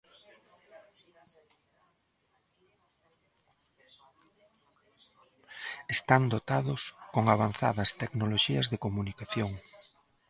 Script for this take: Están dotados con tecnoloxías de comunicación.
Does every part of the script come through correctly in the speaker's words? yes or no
no